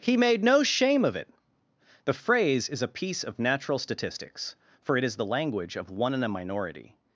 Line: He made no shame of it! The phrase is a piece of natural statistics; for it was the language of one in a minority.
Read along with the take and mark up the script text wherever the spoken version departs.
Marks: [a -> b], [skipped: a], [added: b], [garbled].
He made no shame of it! The phrase is a piece of natural statistics; for it [was -> is] the language of one in a minority.